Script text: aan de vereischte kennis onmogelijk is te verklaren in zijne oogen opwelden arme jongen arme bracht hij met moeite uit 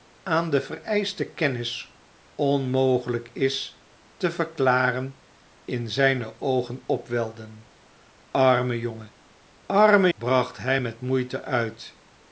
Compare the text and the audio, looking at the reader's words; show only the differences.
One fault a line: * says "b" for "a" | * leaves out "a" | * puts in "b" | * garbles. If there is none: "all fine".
all fine